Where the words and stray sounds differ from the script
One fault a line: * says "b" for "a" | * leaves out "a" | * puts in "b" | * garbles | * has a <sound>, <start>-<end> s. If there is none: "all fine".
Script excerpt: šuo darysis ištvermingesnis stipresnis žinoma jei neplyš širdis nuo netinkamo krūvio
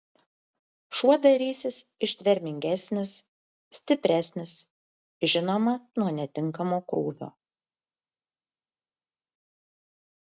* leaves out "jei neplyš širdis"